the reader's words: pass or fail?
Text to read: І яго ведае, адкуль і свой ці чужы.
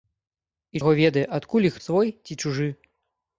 pass